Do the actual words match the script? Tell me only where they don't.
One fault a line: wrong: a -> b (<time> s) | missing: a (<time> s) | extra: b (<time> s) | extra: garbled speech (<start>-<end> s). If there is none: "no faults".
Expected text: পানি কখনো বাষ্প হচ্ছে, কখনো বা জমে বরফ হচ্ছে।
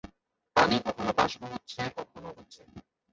missing: বা জমে বরফ (2.3 s)